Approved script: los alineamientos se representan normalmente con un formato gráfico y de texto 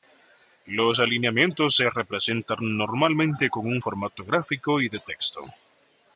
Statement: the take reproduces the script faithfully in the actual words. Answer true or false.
true